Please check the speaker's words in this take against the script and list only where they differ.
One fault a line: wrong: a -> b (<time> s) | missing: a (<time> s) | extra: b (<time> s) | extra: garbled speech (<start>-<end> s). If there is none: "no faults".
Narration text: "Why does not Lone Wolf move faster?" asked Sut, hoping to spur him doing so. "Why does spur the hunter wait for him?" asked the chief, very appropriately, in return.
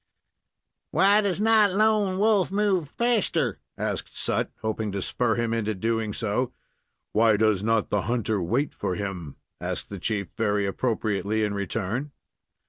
extra: into (5.5 s)
wrong: spur -> not (7.6 s)